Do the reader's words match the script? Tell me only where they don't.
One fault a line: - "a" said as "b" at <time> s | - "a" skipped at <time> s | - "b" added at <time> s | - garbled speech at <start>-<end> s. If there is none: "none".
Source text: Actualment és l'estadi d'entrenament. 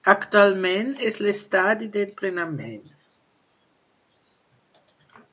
none